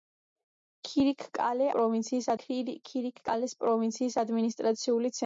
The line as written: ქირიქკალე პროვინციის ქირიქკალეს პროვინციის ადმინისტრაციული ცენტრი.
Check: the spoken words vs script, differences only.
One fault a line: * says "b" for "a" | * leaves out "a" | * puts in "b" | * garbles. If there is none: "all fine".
all fine